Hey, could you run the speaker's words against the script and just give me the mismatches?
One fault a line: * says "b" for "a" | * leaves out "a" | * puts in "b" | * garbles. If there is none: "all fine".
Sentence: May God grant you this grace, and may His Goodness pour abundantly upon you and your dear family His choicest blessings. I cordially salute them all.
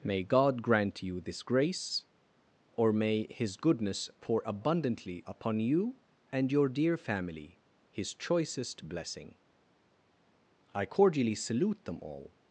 * says "or" for "and"
* says "blessing" for "blessings"